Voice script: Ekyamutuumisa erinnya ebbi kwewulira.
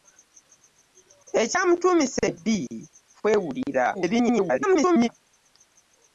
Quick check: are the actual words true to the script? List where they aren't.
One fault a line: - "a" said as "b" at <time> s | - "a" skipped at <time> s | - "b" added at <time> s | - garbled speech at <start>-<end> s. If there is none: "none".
- "erinnya" skipped at 2.2 s
- garbled speech at 3.9-5.1 s